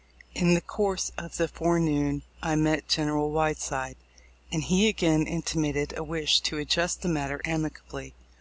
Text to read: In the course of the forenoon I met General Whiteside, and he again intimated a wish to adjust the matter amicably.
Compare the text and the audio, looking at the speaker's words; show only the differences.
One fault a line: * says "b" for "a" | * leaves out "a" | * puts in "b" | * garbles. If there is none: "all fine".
all fine